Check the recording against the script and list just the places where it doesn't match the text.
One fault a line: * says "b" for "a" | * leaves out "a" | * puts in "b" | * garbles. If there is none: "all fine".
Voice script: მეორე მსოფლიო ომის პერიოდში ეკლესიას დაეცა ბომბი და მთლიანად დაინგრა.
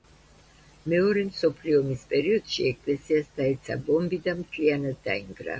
all fine